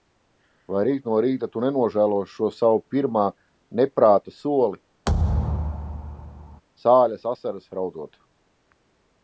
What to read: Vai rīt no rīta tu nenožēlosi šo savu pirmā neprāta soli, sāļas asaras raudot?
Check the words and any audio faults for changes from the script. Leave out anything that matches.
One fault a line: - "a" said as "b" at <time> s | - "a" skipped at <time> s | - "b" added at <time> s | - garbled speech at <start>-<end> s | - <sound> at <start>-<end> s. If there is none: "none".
- thud at 5.1-6.6 s